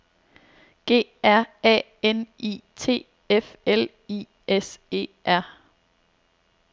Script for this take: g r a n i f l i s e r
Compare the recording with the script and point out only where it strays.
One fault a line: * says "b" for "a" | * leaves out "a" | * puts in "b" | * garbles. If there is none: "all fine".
* puts in "t"